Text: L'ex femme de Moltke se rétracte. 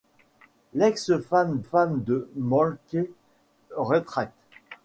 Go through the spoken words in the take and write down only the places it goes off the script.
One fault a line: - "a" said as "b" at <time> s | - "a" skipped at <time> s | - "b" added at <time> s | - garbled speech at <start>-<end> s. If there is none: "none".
- "femme" added at 1.6 s
- "se" skipped at 3.0 s